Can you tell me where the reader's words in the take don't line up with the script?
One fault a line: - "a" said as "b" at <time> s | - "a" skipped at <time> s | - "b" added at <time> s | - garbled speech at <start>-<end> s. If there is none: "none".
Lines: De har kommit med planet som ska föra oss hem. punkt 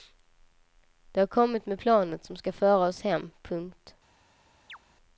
none